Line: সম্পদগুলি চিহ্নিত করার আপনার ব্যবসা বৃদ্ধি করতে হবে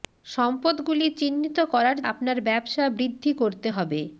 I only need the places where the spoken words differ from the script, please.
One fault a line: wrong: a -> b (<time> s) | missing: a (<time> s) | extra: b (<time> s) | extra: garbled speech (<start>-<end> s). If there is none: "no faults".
no faults